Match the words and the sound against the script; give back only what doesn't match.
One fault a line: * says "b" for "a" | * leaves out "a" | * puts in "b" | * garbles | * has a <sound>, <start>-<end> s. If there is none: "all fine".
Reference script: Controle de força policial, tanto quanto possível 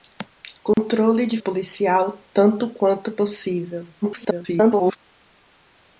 * has a dropout, 0.7-0.8 s
* leaves out "força"
* garbles